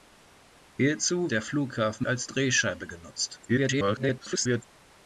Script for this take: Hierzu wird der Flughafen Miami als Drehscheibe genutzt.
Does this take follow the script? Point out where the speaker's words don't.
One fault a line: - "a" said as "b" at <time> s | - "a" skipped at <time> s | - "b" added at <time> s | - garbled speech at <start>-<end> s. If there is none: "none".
- "wird" skipped at 1.3 s
- "Miami" skipped at 2.1 s
- garbled speech at 3.5-4.6 s